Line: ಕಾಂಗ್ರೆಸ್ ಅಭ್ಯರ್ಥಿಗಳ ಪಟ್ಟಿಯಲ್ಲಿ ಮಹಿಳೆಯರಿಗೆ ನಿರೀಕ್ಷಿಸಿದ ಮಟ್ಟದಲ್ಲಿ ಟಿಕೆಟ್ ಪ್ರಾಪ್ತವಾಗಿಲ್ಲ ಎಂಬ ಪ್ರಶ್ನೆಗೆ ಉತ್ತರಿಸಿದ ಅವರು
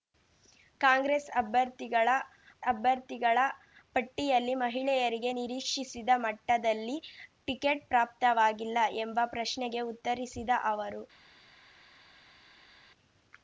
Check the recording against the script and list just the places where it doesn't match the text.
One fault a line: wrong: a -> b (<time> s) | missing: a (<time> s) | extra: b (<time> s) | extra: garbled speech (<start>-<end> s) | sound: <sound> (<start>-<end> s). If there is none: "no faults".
extra: ಅಭ್ಯರ್ಥಿಗಳ (2.6 s)